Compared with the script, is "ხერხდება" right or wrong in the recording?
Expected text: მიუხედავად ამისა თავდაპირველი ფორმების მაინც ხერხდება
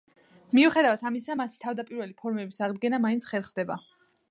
right